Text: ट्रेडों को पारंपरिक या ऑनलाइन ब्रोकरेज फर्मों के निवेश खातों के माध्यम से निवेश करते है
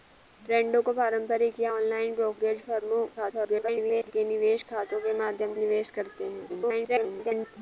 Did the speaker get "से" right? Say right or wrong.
wrong